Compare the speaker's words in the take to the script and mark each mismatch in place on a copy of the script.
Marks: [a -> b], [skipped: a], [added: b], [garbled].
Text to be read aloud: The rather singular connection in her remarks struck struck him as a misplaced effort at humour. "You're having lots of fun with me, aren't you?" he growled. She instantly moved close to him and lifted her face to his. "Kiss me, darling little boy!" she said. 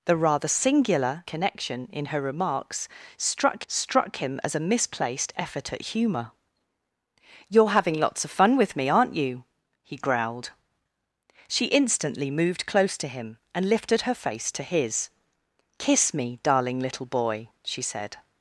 The rather singular connection in her remarks struck struck him as a misplaced effort at humour. "You're having lots of fun with me, aren't you?" he growled. She instantly moved close to him and lifted her face to his. "Kiss me, darling little boy!" she said.